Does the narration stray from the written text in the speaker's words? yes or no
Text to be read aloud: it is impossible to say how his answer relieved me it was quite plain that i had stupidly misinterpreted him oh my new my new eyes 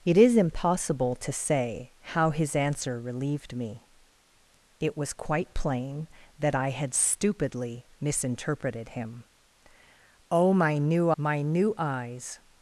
no